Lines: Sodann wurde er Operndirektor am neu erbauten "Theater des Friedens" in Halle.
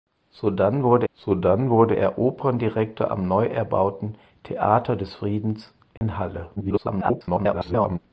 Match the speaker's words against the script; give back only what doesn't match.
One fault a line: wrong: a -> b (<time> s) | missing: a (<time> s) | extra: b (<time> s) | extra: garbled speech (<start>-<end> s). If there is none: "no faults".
extra: sodann wurde (1.1 s)
extra: garbled speech (6.6-8.0 s)